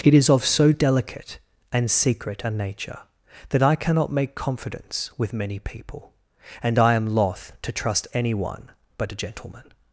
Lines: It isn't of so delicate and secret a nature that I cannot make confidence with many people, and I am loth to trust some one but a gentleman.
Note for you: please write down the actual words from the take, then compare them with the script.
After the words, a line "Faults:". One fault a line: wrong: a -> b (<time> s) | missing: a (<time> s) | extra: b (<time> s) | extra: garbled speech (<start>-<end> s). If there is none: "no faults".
It is of so delicate and secret a nature that I cannot make confidence with many people, and I am loth to trust any one but a gentleman.
Faults:
wrong: isn't -> is (0.1 s)
wrong: some -> any (8.1 s)